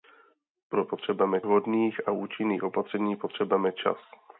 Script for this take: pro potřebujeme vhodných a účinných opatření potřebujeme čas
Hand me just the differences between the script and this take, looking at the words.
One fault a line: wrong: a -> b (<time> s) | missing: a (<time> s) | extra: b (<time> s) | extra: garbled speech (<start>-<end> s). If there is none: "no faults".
no faults